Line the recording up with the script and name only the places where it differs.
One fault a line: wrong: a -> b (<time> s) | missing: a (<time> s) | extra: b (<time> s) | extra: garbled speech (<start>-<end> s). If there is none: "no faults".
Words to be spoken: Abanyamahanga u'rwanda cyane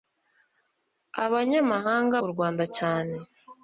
no faults